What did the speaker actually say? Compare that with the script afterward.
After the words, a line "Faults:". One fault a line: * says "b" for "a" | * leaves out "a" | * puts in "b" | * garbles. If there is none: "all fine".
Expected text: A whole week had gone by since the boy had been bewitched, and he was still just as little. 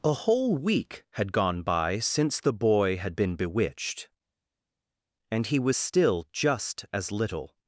A whole week had gone by since the boy had been bewitched, and he was still just as little.
Faults:
all fine